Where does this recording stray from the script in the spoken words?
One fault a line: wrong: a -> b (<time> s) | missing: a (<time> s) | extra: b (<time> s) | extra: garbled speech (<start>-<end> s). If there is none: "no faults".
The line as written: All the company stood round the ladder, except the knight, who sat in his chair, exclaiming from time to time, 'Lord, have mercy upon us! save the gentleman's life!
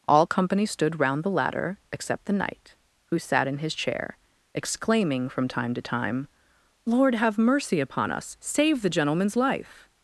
missing: the (0.2 s)